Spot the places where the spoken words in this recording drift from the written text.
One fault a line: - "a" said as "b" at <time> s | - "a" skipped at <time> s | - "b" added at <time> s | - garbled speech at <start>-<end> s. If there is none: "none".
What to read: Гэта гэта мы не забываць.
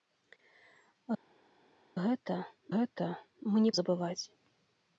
none